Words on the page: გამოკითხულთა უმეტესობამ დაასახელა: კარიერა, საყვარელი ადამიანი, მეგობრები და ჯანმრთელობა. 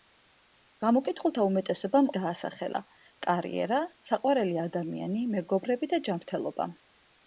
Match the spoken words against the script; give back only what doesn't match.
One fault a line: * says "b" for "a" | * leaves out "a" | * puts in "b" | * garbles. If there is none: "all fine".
all fine